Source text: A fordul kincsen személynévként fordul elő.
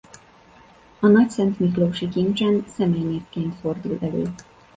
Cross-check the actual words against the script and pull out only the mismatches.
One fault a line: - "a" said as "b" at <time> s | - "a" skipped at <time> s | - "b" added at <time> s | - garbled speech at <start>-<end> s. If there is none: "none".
- "fordul" said as "nagyszentmiklósi" at 1.1 s